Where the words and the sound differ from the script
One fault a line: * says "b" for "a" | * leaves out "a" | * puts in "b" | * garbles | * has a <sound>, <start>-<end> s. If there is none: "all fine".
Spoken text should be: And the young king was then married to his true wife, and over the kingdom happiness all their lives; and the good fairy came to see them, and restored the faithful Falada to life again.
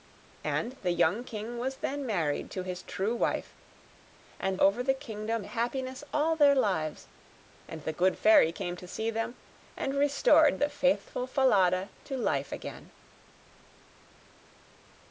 all fine